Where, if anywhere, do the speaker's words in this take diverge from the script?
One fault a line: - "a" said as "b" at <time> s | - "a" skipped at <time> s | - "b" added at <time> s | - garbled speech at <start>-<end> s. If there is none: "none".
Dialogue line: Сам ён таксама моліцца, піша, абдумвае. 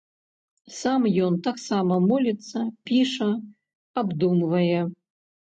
none